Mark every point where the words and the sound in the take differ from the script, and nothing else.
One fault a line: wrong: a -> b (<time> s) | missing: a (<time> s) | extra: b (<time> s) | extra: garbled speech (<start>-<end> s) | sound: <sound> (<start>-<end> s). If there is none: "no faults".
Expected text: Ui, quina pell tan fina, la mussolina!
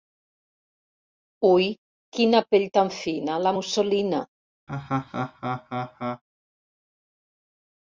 sound: laugh (4.7-6.2 s)